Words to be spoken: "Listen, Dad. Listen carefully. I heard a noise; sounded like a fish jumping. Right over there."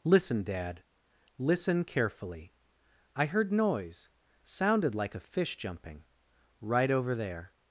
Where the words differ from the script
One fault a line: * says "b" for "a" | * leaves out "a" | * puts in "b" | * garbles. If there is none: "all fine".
* leaves out "a"